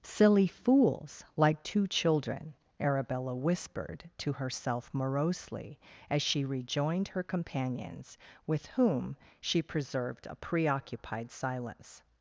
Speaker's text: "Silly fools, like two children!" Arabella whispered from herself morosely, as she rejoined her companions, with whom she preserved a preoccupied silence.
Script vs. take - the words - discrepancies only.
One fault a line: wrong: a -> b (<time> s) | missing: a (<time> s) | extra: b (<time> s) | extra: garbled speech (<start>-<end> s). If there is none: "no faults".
wrong: from -> to (4.2 s)